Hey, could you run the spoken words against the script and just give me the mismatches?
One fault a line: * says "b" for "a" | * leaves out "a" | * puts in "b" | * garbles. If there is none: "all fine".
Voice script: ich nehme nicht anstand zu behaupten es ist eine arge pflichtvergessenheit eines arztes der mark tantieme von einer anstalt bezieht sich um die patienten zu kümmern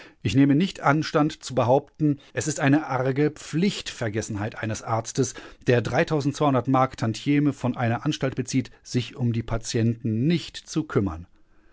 * puts in "nicht"